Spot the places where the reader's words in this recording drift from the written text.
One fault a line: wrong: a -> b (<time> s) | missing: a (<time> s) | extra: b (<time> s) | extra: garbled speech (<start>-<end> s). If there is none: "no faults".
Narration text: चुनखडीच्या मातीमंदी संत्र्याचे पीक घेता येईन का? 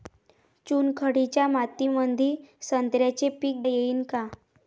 missing: घेता (3.6 s)